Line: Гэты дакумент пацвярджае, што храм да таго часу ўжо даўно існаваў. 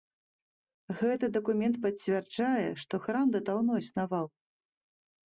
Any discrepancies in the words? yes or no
yes